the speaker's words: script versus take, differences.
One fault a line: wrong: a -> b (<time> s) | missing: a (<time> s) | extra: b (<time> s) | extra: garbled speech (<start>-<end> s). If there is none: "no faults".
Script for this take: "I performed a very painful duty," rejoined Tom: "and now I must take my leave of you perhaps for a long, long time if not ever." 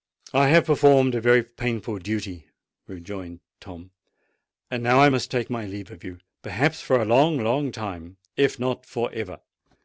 extra: have (0.5 s)
extra: for (8.8 s)